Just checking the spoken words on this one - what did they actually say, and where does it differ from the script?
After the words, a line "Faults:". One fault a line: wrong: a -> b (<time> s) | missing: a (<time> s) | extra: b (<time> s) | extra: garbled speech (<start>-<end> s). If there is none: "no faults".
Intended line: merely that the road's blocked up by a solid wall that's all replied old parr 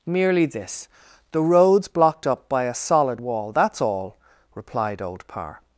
merely this the road's blocked up by a solid wall that's all replied old parr
Faults:
wrong: that -> this (0.5 s)